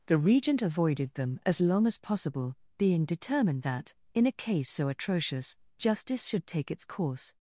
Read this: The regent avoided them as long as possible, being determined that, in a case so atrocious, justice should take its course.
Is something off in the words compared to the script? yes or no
no